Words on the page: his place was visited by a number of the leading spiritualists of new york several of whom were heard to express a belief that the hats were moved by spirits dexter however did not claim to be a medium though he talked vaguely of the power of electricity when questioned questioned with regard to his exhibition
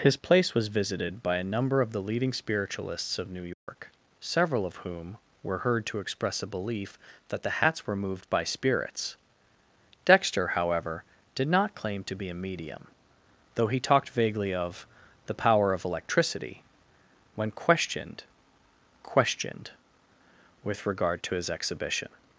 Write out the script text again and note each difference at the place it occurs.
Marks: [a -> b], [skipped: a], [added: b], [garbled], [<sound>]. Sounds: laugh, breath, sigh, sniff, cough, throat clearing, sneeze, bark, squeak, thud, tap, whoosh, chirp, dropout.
his place was visited by a number of the leading spiritualists of new york [dropout] several of whom were heard to express a belief that the hats were moved by spirits dexter however did not claim to be a medium though he talked vaguely of the power of electricity when questioned questioned with regard to his exhibition